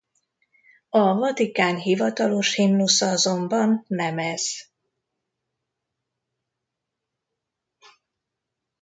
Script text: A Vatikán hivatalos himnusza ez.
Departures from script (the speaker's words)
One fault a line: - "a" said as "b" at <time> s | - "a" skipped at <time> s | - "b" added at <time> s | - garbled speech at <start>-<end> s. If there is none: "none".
- "azonban nem" added at 3.1 s